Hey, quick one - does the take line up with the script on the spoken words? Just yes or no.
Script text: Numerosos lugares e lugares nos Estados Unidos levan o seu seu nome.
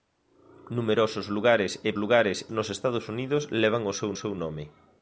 yes